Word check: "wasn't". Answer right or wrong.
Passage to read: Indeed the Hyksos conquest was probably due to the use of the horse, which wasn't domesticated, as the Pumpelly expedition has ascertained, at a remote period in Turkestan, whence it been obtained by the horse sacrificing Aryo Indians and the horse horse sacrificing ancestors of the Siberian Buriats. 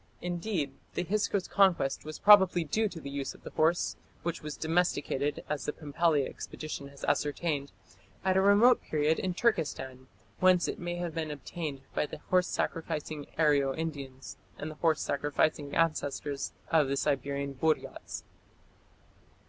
wrong